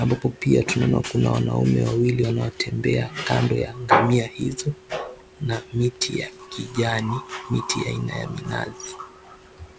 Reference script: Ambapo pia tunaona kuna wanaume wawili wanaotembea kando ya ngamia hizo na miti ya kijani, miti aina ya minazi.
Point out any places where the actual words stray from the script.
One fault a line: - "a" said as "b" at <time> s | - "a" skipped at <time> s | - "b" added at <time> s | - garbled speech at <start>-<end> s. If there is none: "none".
none